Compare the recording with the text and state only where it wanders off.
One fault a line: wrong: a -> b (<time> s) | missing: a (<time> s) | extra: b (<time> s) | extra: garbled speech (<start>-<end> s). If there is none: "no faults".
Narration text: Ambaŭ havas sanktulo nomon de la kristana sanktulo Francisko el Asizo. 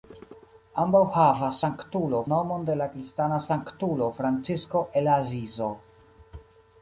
no faults